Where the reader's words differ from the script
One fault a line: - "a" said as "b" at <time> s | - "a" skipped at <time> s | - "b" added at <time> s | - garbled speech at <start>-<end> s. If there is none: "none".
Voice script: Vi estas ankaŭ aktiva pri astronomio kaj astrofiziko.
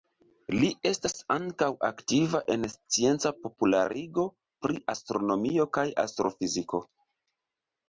- "Vi" said as "Li" at 0.5 s
- "en scienca popularigo" added at 2.5 s